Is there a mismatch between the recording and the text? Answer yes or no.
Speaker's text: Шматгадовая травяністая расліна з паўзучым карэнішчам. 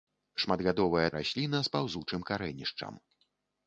yes